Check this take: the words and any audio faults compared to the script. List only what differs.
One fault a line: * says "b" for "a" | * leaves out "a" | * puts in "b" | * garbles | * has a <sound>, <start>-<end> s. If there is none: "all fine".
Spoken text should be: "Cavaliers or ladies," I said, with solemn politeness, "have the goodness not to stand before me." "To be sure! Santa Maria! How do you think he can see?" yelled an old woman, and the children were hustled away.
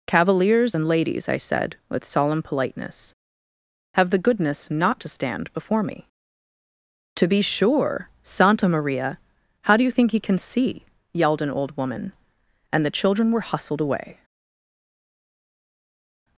* says "and" for "or"